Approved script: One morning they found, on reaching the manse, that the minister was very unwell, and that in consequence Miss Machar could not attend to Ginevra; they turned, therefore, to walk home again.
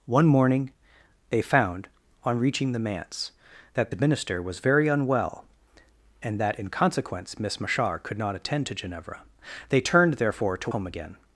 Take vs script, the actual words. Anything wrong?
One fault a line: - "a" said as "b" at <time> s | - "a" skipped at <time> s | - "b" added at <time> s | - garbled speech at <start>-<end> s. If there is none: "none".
- "walk" skipped at 10.7 s